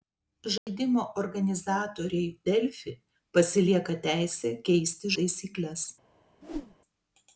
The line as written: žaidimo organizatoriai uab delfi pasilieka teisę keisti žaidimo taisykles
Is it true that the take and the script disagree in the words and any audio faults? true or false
true